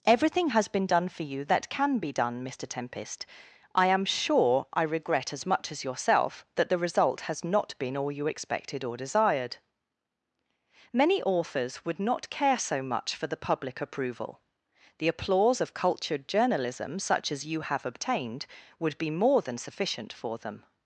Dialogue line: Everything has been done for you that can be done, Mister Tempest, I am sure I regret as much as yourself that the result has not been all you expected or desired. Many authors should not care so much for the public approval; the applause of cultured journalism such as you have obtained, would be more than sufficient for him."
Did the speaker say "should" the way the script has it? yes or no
no